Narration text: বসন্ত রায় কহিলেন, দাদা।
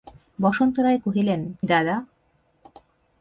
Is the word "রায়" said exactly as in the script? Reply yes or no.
yes